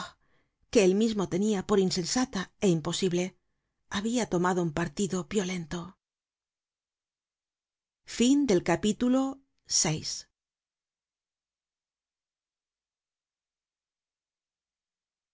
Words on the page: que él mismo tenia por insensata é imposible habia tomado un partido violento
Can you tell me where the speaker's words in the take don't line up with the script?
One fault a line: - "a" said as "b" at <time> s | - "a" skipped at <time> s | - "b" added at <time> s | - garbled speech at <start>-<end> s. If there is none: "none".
none